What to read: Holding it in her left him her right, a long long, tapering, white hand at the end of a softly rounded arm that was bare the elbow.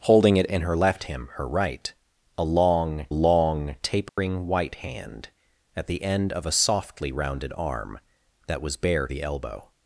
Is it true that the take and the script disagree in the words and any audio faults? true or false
true